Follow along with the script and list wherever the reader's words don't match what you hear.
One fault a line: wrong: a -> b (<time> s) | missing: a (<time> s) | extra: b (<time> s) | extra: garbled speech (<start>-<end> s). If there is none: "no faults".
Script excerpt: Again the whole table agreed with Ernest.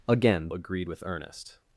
missing: the whole table (0.5 s)